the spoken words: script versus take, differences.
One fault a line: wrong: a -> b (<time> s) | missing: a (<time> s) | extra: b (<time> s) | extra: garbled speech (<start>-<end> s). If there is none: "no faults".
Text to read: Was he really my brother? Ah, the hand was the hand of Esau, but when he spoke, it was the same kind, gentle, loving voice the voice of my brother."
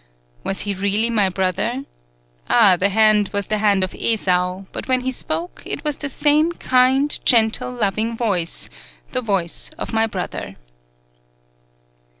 no faults